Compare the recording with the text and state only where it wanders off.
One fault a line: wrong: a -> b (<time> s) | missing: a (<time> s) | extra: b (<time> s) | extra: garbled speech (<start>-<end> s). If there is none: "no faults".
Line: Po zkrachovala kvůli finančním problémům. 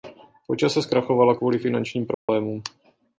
extra: čase (0.6 s)